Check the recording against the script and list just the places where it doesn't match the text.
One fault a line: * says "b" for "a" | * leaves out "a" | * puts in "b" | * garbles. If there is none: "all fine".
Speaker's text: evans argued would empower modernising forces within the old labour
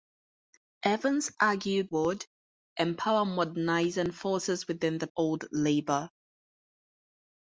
all fine